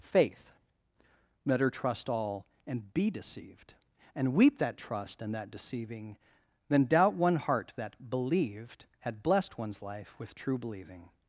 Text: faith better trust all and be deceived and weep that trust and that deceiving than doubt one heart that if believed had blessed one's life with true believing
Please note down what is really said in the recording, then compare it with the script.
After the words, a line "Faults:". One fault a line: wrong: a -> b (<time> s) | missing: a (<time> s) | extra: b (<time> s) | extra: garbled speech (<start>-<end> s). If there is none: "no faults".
faith better trust all and be deceived and weep that trust and that deceiving than doubt one heart that believed had blessed one's life with true believing
Faults:
missing: if (8.1 s)